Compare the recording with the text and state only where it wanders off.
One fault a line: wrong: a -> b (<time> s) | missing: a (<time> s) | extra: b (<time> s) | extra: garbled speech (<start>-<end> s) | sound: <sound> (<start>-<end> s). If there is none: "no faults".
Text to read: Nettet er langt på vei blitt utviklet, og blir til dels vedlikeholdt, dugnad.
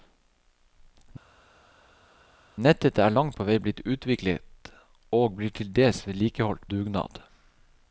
no faults